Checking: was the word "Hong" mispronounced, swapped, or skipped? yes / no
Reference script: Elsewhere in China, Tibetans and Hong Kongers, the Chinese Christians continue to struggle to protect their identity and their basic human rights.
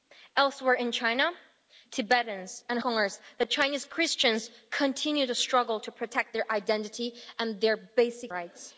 yes